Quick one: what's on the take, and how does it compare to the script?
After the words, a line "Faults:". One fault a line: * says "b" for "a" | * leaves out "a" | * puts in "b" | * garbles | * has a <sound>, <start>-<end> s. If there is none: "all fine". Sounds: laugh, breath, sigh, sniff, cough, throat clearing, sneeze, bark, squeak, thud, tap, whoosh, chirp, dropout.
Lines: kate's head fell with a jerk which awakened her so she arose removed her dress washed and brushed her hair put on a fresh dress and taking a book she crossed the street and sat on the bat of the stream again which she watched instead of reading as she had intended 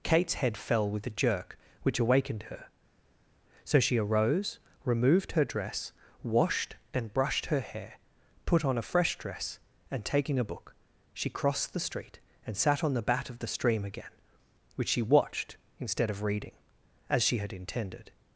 kate's head fell with a jerk which awakened her so she arose removed her dress washed and brushed her hair put on a fresh dress and taking a book she crossed the street and sat on the bat of the stream again which she watched instead of reading as she had intended
Faults:
all fine